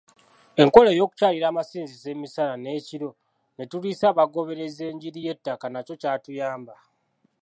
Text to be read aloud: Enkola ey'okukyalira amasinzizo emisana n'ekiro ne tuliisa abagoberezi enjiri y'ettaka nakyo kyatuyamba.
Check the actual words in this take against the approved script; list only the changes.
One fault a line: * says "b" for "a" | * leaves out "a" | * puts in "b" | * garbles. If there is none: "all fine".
all fine